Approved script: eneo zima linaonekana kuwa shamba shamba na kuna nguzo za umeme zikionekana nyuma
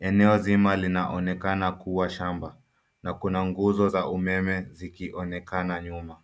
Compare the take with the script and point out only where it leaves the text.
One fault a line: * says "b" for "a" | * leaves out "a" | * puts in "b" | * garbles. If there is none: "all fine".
* leaves out "shamba"